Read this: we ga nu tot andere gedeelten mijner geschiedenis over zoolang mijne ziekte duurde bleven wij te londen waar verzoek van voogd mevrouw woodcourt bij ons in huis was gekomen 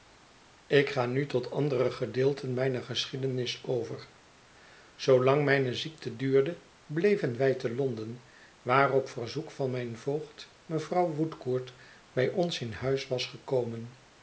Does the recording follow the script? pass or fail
fail